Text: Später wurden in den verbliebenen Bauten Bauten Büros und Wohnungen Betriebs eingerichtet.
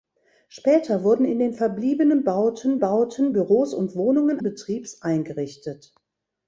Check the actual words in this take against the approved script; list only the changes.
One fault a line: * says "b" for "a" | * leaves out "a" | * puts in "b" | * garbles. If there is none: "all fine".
all fine